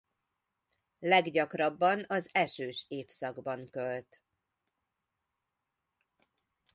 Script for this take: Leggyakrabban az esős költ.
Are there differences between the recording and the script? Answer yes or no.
yes